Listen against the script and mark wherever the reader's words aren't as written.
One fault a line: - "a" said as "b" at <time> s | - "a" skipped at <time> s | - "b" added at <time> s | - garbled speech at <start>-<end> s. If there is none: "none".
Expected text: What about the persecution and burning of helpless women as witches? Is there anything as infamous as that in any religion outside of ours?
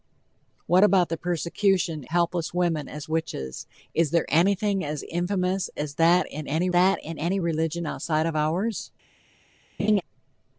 - "and burning of" skipped at 2.0 s
- "that in any" added at 6.7 s